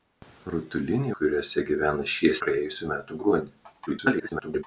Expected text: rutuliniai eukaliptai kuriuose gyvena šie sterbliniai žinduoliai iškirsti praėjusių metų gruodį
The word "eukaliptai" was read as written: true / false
false